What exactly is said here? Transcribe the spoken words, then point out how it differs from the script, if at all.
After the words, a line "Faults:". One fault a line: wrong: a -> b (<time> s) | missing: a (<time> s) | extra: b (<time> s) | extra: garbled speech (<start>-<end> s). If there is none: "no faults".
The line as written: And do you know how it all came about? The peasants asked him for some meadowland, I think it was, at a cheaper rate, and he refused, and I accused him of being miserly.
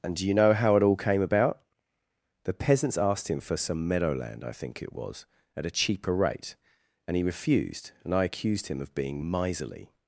And do you know how it all came about? The peasants asked him for some meadowland, I think it was, at a cheaper rate, and he refused, and I accused him of being miserly.
Faults:
no faults